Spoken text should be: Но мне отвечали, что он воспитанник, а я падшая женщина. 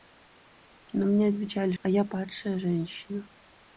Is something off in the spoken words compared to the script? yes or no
yes